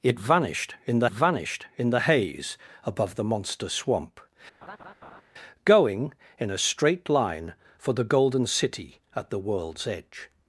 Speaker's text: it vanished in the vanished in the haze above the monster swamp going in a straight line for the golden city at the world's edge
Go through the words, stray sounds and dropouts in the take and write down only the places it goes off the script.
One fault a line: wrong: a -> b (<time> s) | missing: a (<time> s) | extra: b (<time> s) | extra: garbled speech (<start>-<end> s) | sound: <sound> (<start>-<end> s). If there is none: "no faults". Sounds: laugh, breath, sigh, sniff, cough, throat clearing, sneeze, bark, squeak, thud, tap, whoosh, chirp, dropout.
sound: laugh (4.6-5.2 s)